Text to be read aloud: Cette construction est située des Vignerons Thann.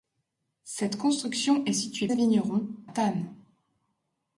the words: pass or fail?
pass